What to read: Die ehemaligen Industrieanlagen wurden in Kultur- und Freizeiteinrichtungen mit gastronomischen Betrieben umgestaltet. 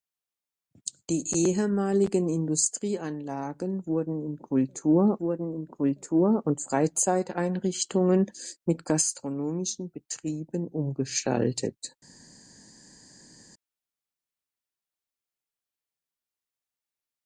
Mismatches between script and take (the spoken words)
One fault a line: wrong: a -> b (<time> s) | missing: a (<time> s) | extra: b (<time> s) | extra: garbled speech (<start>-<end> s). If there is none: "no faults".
extra: wurden in Kultur (5.2 s)